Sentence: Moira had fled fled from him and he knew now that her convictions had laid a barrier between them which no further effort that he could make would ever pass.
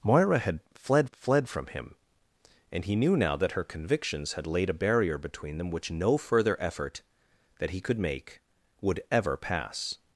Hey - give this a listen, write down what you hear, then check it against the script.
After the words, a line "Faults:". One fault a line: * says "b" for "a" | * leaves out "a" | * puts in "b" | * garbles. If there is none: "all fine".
Moira had fled fled from him and he knew now that her convictions had laid a barrier between them which no further effort that he could make would ever pass.
Faults:
all fine